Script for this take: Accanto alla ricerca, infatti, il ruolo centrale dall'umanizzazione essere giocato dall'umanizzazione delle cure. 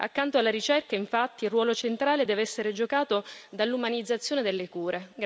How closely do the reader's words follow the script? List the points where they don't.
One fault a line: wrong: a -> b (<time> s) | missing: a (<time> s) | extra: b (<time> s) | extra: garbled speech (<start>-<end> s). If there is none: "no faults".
wrong: dall'umanizzazione -> deve (2.2 s)